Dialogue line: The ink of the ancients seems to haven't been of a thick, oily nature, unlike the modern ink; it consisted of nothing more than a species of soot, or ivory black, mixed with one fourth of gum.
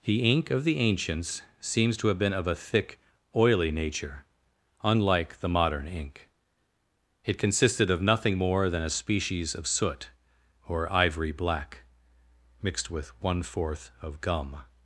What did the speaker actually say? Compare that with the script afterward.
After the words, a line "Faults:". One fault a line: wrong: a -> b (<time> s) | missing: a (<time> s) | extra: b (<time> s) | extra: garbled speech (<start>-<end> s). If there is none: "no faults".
The ink of the ancients seems to have been of a thick, oily nature, unlike the modern ink; it consisted of nothing more than a species of soot, or ivory black, mixed with one fourth of gum.
Faults:
wrong: haven't -> have (2.1 s)